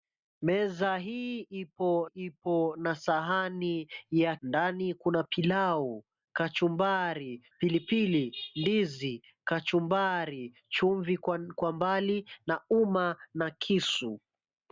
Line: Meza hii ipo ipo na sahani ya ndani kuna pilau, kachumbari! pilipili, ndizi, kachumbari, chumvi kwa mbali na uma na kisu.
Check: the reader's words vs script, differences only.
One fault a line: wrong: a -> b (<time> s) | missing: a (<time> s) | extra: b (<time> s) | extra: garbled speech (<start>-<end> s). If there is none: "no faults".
no faults